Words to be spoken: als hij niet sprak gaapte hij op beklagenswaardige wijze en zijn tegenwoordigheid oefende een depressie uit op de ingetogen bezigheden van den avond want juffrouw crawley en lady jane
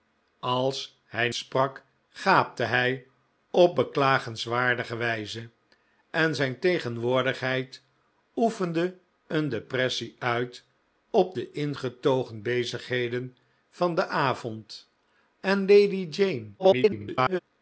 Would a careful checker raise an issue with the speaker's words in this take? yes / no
yes